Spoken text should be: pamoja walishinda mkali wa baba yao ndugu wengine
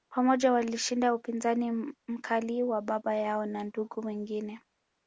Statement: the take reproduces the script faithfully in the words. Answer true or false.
false